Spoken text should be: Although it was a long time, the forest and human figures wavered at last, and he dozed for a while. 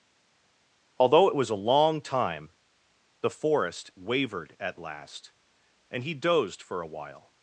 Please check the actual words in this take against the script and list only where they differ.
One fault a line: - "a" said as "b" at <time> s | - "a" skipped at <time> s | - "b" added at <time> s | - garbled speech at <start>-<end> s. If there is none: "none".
- "and human figures" skipped at 3.9 s